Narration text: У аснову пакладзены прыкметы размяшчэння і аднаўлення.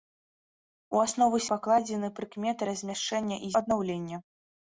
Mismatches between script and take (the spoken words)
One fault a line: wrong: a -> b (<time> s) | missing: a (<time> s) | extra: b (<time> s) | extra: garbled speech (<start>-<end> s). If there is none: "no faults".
no faults